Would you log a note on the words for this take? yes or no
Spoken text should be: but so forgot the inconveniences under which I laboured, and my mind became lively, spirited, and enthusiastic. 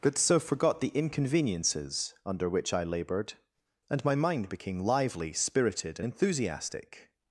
no